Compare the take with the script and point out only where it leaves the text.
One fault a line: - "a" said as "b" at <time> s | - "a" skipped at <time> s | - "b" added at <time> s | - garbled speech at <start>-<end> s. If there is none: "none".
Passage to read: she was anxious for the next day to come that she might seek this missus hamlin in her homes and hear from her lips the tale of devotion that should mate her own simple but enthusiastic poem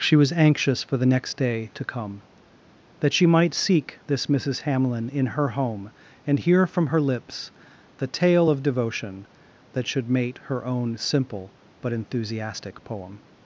- "homes" said as "home" at 5.5 s